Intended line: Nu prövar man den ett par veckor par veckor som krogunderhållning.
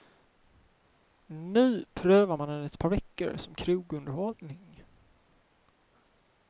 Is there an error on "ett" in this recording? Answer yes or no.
no